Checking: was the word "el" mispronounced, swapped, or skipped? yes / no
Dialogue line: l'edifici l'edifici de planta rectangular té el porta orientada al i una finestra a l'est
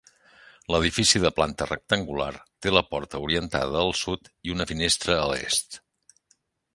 yes